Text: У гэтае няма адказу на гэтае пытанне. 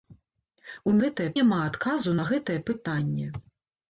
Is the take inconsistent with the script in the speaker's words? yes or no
no